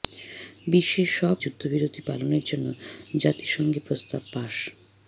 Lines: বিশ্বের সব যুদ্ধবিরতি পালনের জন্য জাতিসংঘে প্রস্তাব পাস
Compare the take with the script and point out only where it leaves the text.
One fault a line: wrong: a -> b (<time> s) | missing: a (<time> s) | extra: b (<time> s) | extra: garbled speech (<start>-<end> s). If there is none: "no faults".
no faults